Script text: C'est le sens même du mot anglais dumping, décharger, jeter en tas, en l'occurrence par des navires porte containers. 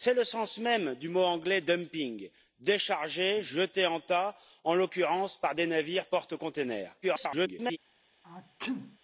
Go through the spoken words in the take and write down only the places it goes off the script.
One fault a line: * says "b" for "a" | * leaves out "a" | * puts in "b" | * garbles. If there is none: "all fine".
* garbles